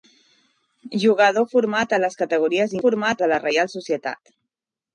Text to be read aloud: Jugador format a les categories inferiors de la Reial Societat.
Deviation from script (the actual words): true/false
true